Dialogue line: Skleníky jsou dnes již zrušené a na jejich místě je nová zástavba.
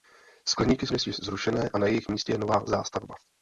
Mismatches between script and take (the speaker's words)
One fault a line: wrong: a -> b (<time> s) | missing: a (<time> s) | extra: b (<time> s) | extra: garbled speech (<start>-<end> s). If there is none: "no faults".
missing: jsou (0.9 s)